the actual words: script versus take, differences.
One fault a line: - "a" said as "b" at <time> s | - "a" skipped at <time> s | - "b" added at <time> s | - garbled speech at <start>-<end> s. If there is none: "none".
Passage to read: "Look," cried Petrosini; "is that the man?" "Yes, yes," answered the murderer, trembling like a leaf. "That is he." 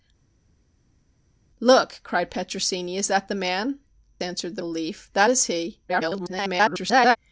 - "Yes yes" skipped at 3.8 s
- "murderer trembling like" skipped at 4.6 s
- garbled speech at 5.9-7.2 s